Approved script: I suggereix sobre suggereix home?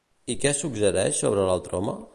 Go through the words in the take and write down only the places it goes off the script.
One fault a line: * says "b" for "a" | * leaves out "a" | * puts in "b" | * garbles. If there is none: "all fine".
* puts in "què"
* says "l'altre" for "suggereix"